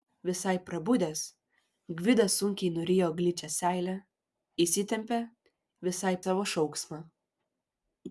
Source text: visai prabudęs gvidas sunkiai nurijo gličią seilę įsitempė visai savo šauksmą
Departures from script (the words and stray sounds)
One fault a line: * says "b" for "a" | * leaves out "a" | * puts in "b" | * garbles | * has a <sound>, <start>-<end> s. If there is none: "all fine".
all fine